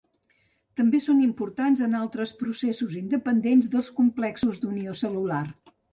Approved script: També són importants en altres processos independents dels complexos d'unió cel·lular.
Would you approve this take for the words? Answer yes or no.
yes